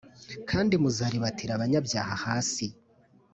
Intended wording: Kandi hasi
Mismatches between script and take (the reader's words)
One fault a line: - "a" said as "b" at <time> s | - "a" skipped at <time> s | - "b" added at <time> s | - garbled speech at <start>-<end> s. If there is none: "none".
- "muzaribatira abanyabyaha" added at 0.8 s